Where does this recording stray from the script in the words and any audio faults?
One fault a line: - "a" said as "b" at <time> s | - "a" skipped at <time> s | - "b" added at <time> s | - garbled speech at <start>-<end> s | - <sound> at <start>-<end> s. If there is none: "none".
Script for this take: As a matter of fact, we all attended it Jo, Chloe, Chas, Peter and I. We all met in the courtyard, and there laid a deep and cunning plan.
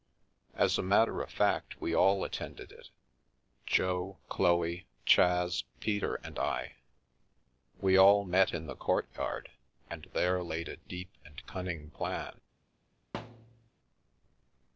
- thud at 13.1-13.7 s